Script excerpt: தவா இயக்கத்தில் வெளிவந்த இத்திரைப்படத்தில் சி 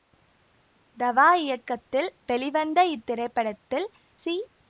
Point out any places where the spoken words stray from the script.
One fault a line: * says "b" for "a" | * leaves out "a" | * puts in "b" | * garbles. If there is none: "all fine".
all fine